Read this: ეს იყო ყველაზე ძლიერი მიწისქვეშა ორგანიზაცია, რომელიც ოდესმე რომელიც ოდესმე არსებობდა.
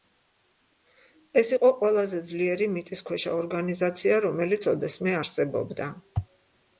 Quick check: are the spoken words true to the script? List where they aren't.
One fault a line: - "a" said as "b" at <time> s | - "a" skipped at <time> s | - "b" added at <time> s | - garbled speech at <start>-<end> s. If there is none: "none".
- "რომელიც ოდესმე" skipped at 5.2 s